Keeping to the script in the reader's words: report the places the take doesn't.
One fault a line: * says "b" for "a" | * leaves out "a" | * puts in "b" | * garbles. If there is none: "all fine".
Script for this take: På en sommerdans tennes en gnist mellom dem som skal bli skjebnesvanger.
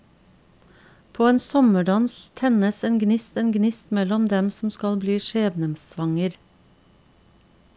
* puts in "en gnist"